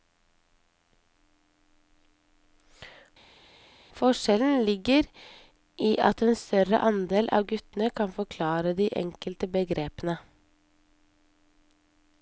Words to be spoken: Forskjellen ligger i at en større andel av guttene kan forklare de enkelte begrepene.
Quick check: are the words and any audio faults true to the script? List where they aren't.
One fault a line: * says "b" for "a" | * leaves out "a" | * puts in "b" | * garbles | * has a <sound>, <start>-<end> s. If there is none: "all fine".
all fine